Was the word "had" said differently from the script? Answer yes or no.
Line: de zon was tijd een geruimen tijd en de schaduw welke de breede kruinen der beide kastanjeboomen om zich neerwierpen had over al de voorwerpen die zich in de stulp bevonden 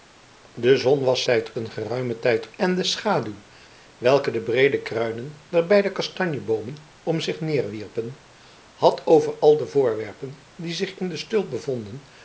no